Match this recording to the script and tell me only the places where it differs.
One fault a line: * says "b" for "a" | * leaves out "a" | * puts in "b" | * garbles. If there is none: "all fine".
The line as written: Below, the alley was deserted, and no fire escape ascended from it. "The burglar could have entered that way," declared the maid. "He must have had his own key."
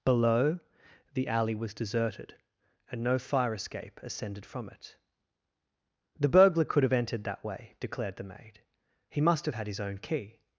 all fine